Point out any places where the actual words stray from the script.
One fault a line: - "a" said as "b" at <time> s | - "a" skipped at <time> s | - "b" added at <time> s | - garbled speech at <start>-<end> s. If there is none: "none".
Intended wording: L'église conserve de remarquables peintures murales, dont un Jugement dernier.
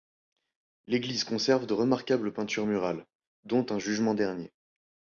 none